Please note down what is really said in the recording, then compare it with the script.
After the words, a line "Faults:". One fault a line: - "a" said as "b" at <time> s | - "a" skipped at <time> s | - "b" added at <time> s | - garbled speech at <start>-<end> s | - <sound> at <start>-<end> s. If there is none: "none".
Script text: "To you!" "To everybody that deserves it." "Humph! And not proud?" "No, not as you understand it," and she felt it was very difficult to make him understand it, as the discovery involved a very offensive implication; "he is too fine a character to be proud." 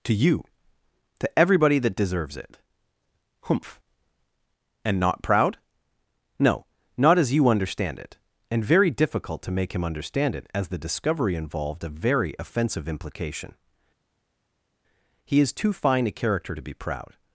"To you!" "To everybody that deserves it." "Humph! And not proud?" "No, not as you understand it," and very difficult to make him understand it, as the discovery involved a very offensive implication; "he is too fine a character to be proud."
Faults:
- "she felt it was" skipped at 8.7 s